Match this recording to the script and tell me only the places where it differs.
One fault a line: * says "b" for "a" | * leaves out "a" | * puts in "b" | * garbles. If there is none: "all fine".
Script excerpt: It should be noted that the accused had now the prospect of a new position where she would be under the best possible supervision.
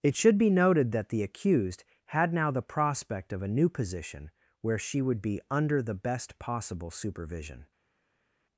all fine